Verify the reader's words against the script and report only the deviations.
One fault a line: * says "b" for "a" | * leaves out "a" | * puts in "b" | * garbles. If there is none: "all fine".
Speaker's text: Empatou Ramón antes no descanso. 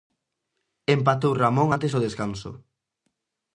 * says "do" for "no"